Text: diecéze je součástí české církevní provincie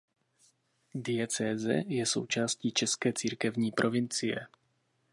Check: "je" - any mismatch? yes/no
no